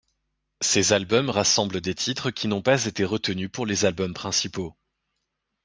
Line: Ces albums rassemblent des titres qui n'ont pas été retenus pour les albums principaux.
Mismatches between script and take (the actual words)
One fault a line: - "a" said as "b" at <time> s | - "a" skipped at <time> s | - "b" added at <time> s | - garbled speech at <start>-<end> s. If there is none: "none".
none